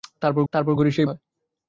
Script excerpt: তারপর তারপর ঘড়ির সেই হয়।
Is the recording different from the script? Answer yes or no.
no